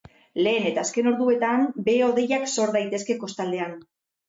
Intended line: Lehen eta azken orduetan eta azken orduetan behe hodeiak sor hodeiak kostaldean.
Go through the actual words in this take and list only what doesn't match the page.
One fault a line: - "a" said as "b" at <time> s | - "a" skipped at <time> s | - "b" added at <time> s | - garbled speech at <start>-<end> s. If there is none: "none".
- "eta azken orduetan" skipped at 1.7 s
- "hodeiak" said as "daitezke" at 2.8 s